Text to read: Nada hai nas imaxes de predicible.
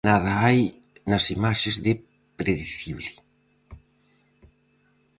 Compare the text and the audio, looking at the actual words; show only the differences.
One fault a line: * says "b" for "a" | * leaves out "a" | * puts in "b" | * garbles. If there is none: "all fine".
all fine